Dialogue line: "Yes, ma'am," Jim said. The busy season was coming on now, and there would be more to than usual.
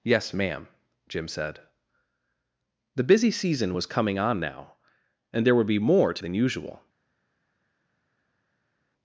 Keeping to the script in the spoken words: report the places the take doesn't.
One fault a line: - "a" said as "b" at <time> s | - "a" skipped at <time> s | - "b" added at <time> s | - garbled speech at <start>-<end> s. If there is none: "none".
none